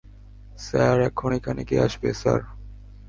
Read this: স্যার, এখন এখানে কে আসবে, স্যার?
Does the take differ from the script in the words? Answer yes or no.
no